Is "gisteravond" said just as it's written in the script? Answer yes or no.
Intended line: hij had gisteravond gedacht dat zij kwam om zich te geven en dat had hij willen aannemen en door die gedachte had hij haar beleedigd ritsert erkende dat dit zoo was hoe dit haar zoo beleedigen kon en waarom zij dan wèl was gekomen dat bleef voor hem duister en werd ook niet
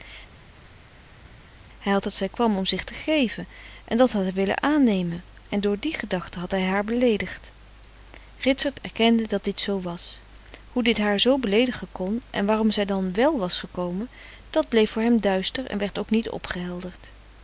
no